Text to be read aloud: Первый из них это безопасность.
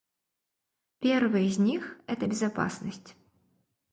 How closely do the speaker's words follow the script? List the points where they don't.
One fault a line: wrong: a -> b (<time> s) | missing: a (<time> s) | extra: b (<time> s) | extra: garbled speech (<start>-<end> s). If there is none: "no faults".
no faults